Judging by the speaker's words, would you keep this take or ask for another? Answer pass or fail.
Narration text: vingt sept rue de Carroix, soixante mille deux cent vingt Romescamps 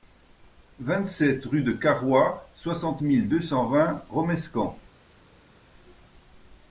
pass